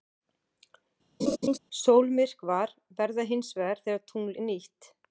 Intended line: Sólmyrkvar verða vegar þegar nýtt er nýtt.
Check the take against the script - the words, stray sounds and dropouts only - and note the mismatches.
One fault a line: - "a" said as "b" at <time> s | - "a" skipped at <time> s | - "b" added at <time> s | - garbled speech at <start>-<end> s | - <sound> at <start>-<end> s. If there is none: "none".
- laugh at 1.2-1.6 s
- "hins" added at 3.3 s
- "nýtt" said as "tungl" at 4.1 s